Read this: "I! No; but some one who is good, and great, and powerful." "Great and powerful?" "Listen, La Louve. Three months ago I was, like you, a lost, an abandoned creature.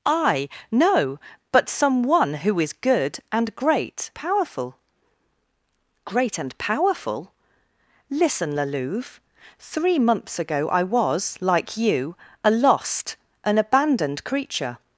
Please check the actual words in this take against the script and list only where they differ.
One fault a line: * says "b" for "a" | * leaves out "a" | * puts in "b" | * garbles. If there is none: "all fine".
* leaves out "and"